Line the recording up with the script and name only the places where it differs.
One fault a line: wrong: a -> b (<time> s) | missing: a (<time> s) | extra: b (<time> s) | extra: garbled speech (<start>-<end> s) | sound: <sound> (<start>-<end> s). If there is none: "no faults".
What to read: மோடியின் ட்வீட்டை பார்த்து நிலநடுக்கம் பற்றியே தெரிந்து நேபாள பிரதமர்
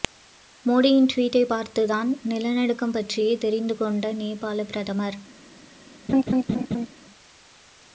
extra: தான் (1.9 s)
extra: கொண்ட (3.8 s)
sound: laugh (6.1-6.9 s)